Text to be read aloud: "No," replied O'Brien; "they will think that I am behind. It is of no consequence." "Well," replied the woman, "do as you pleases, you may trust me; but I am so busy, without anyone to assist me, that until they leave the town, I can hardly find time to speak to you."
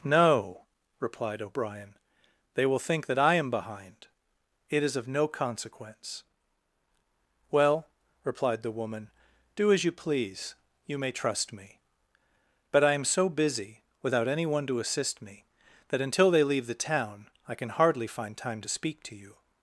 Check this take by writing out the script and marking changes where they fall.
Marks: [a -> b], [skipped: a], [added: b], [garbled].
"No," replied O'Brien; "they will think that I am behind. It is of no consequence." "Well," replied the woman, "do as you [pleases, -> please] you may trust me; but I am so busy, without anyone to assist me, that until they leave the town, I can hardly find time to speak to you."